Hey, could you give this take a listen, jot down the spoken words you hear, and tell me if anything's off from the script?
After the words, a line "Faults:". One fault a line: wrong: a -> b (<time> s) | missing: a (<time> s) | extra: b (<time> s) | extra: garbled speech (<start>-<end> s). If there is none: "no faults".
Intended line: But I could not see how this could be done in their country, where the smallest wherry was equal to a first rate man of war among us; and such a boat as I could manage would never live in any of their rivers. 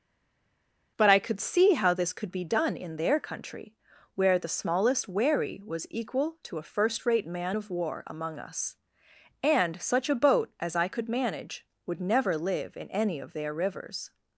But I could see how this could be done in their country, where the smallest wherry was equal to a first rate man of war among us; and such a boat as I could manage would never live in any of their rivers.
Faults:
missing: not (1.4 s)